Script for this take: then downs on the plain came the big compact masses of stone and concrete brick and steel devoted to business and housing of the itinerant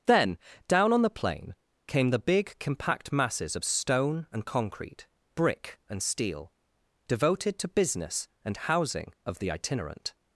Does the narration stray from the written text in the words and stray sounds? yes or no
yes